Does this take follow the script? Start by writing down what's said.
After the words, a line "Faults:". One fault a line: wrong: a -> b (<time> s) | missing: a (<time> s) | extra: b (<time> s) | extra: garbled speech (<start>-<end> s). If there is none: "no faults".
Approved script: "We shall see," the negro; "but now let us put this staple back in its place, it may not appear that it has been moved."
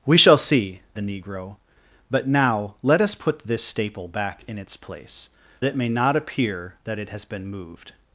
"We shall see," the negro; "but now let us put this staple back in its place, it may not appear that it has been moved."
Faults:
no faults